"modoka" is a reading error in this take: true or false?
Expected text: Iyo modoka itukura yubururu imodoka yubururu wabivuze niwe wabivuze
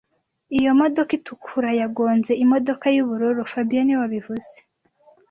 false